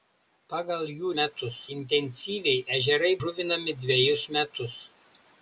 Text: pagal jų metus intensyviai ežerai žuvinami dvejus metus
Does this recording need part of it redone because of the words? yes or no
no